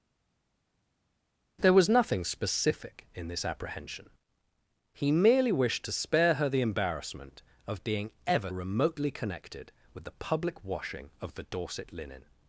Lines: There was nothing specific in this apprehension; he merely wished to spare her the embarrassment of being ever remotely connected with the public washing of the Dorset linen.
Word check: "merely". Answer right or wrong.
right